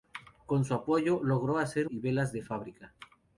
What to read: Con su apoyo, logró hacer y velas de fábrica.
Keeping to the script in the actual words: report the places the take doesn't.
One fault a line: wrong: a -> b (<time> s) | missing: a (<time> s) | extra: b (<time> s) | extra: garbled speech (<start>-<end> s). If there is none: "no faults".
no faults